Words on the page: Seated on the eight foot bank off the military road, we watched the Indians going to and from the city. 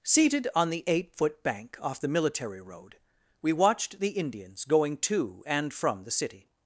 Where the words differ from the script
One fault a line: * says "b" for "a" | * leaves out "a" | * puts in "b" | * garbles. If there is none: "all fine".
all fine